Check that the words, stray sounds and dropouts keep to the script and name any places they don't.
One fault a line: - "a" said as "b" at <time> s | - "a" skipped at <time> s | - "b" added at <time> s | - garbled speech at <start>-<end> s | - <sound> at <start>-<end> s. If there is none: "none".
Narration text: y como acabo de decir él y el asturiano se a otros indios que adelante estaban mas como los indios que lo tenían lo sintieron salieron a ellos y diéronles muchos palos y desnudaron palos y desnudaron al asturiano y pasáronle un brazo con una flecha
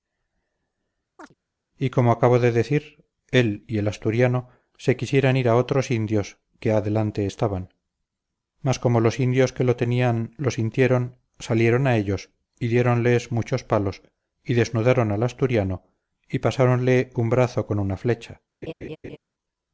- chirp at 1.2-1.3 s
- "quisieran ir" added at 5.0 s
- "palos y desnudaron" skipped at 15.1 s
- laugh at 18.6-19.2 s